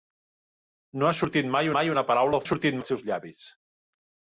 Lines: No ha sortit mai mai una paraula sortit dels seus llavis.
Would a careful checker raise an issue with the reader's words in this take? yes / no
no